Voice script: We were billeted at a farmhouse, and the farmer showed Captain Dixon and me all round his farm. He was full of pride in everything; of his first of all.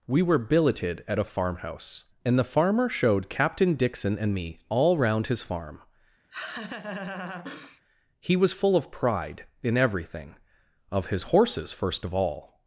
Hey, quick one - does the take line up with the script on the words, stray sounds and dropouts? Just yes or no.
no